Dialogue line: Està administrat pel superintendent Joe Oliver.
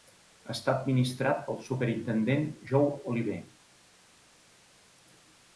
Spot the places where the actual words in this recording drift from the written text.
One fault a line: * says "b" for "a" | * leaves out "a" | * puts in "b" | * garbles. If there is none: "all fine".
all fine